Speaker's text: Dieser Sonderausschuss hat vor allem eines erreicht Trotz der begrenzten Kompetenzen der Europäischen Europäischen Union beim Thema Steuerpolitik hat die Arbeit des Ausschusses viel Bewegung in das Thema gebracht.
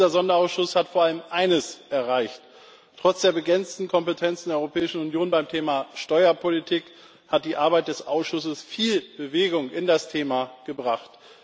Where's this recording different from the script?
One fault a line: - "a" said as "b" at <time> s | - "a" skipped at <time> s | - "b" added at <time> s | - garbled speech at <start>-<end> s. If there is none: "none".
- "Europäischen" skipped at 5.0 s